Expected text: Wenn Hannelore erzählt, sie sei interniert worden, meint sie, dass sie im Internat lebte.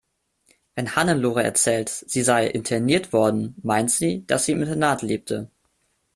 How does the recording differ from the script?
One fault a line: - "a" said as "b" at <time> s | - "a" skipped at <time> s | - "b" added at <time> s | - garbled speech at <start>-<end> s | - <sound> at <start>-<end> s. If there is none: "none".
none